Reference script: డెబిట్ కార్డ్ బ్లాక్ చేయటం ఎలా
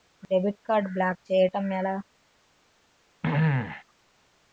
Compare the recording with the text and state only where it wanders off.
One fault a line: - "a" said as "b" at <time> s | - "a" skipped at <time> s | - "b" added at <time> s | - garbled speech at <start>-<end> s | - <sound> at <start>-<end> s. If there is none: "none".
- throat clearing at 3.2-3.8 s